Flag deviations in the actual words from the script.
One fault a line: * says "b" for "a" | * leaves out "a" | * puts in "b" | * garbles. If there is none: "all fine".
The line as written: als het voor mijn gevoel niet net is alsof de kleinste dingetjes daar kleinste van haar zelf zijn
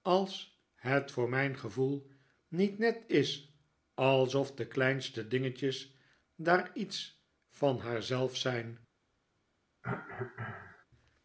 * says "iets" for "kleinste"